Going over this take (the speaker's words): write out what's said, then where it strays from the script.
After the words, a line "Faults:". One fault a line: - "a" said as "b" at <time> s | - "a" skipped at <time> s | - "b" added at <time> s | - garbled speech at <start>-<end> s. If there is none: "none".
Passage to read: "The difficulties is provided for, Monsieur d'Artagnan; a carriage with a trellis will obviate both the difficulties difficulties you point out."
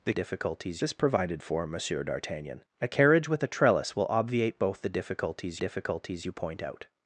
"The difficulties is provided for, Monsieur d'Artagnan; a carriage with a trellis will obviate both the difficulties difficulties you point out."
Faults:
none